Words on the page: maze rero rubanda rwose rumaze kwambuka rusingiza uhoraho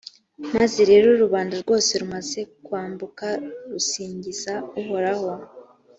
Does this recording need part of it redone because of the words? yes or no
no